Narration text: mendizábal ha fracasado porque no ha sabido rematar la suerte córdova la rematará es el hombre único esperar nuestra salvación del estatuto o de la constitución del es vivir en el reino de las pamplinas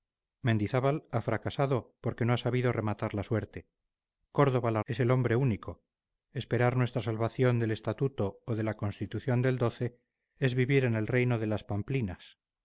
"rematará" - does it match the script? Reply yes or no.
no